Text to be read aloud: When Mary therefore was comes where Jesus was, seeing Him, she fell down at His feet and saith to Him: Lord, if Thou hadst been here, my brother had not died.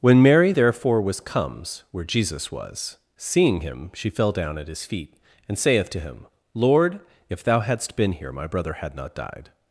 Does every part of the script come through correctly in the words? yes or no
yes